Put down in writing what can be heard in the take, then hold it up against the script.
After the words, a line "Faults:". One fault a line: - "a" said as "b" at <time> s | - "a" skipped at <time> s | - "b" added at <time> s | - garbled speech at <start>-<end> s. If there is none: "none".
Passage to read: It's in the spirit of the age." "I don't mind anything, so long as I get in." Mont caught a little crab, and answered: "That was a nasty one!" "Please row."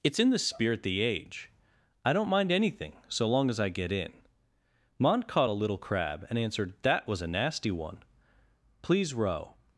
It's in the spirit the age." "I don't mind anything, so long as I get in." Mont caught a little crab, and answered: "That was a nasty one!" "Please row."
Faults:
- "of" skipped at 0.8 s